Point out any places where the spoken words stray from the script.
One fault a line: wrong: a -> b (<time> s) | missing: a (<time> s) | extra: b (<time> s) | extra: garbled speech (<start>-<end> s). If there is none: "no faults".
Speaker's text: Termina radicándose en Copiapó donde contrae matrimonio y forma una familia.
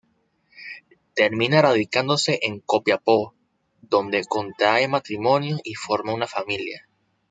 no faults